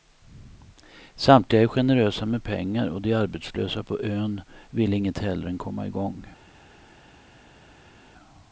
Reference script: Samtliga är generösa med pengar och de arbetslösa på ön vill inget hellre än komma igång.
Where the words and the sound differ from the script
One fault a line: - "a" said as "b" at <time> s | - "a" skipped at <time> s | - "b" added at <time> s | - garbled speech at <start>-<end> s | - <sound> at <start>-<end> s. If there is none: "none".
none